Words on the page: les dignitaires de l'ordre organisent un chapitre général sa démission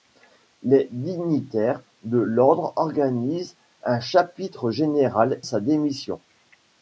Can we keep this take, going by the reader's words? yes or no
yes